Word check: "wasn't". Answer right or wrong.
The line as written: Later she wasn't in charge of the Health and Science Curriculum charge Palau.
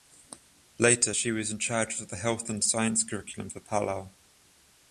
wrong